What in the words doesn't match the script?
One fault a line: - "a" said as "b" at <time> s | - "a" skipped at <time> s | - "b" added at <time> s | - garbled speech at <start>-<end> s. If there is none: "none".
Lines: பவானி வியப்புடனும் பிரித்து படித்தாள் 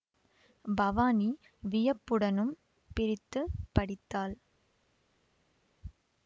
none